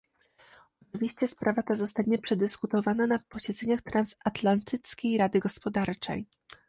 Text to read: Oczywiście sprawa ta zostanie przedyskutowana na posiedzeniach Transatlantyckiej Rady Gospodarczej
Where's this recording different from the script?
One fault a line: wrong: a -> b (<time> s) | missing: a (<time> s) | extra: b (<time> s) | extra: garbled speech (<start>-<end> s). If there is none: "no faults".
no faults